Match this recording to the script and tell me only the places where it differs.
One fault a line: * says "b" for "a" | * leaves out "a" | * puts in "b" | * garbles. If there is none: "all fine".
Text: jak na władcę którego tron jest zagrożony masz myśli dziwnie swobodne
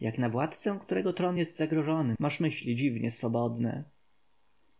all fine